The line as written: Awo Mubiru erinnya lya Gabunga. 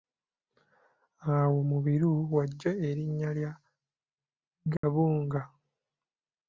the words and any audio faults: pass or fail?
fail